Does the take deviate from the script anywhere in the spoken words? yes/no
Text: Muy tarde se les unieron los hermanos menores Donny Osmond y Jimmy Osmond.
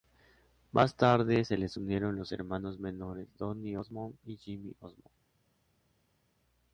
yes